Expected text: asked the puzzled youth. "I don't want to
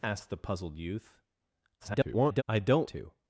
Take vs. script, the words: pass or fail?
fail